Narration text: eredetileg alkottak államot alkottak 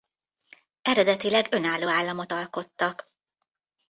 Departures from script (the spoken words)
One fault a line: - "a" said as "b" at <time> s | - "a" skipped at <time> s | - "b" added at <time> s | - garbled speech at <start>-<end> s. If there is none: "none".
- "alkottak" said as "önálló" at 1.5 s